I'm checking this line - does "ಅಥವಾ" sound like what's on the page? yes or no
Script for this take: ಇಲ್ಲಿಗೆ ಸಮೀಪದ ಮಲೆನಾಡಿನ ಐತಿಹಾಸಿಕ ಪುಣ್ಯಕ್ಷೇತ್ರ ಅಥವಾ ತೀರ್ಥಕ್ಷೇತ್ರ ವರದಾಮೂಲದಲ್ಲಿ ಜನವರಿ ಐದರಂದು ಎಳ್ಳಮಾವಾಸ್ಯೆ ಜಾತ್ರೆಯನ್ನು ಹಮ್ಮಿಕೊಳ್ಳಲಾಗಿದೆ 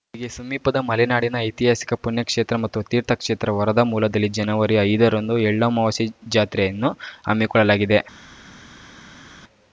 no